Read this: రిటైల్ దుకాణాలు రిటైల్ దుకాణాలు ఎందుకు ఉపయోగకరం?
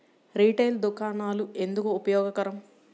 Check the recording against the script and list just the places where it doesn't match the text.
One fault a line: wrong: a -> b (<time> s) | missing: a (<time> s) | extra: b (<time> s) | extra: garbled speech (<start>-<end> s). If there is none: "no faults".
missing: రిటైల్ దుకాణాలు (1.5 s)